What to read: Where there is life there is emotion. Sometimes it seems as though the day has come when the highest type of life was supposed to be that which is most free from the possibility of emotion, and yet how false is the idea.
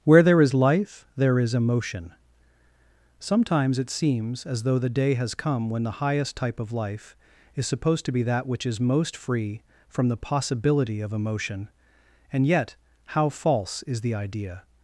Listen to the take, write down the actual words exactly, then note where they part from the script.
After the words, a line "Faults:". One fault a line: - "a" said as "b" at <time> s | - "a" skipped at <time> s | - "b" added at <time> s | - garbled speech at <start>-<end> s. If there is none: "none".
Where there is life there is emotion. Sometimes it seems as though the day has come when the highest type of life is supposed to be that which is most free from the possibility of emotion, and yet how false is the idea.
Faults:
- "was" said as "is" at 7.5 s